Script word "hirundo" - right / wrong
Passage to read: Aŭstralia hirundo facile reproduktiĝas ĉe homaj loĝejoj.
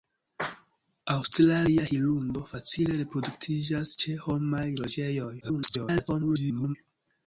right